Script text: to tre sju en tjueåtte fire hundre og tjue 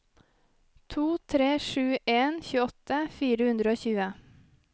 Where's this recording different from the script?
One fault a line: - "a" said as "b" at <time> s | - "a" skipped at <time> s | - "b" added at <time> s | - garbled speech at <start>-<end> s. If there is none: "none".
none